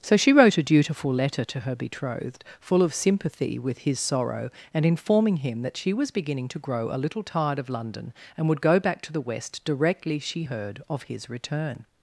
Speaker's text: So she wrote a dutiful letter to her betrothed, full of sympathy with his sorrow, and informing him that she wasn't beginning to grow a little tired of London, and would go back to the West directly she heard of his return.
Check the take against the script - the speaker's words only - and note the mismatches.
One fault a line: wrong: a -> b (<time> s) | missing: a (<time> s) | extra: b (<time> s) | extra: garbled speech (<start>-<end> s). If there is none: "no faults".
wrong: wasn't -> was (5.9 s)